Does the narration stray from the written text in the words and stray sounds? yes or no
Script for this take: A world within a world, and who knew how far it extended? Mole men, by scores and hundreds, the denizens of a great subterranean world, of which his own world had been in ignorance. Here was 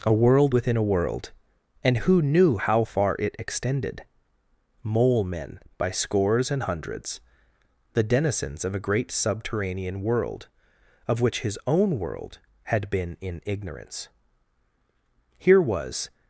no